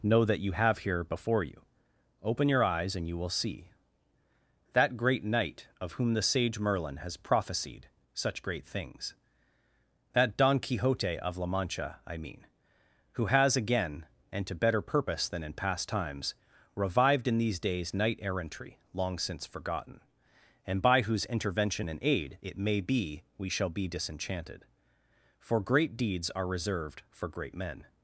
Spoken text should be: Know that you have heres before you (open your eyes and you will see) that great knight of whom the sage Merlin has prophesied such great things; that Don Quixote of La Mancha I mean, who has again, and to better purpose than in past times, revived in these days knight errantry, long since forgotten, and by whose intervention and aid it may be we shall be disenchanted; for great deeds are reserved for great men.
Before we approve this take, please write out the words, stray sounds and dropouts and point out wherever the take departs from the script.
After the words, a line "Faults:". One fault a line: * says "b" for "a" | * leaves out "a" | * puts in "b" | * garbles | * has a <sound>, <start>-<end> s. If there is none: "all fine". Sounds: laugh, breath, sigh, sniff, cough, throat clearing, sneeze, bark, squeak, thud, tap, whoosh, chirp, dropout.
Know that you have here before you (open your eyes and you will see) that great knight of whom the sage Merlin has prophesied such great things; that Don Quixote of La Mancha I mean, who has again, and to better purpose than in past times, revived in these days knight errantry, long since forgotten, and by whose intervention and aid it may be we shall be disenchanted; for great deeds are reserved for great men.
Faults:
* says "here" for "heres"